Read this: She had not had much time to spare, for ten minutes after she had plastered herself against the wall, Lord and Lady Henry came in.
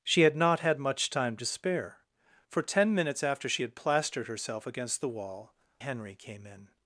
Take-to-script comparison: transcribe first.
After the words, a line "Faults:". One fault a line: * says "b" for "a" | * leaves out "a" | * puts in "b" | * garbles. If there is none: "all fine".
She had not had much time to spare, for ten minutes after she had plastered herself against the wall, Henry came in.
Faults:
* leaves out "Lord and Lady"